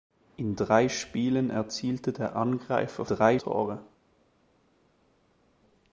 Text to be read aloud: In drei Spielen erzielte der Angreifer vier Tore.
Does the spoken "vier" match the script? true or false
false